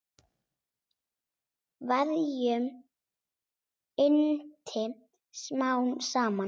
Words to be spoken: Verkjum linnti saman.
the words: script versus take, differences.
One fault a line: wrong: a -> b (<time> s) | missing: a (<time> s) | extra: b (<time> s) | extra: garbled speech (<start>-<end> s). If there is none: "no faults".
extra: smám (5.4 s)